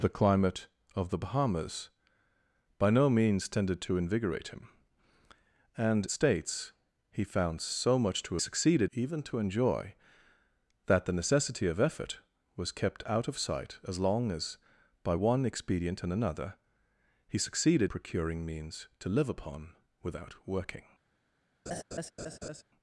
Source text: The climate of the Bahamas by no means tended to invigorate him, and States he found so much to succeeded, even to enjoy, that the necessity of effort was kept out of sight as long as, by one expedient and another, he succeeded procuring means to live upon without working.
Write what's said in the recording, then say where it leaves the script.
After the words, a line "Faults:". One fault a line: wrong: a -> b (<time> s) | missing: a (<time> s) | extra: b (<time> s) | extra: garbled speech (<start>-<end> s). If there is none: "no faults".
The climate of the Bahamas by no means tended to invigorate him, and States he found so much to succeeded, even to enjoy, that the necessity of effort was kept out of sight as long as, by one expedient and another, he succeeded procuring means to live upon without working.
Faults:
no faults